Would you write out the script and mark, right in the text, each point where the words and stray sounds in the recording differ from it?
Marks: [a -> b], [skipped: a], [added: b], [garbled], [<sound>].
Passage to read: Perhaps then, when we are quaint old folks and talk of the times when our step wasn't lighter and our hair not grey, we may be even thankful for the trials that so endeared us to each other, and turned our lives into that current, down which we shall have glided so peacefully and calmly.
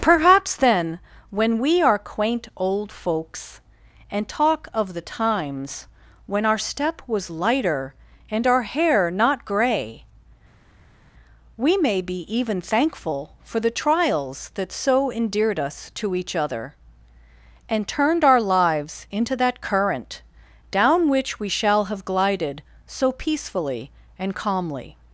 Perhaps then, when we are quaint old folks and talk of the times when our step [wasn't -> was] lighter and our hair not grey, we may be even thankful for the trials that so endeared us to each other, and turned our lives into that current, down which we shall have glided so peacefully and calmly.